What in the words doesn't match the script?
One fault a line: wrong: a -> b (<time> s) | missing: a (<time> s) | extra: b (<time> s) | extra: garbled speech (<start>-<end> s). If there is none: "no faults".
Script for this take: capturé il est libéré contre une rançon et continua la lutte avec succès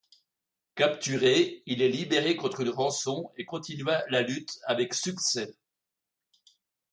no faults